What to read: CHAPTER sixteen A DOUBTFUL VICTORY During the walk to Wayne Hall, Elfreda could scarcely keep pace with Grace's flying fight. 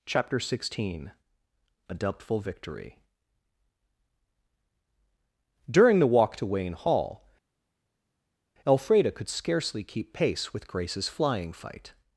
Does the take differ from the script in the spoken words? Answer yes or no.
no